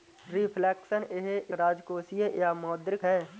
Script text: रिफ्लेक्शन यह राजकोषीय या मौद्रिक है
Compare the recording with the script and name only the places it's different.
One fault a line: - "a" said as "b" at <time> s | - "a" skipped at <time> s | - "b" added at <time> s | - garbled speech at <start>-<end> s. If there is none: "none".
none